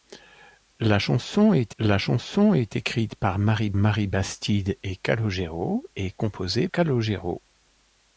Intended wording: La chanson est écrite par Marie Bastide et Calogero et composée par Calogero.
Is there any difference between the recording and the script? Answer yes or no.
yes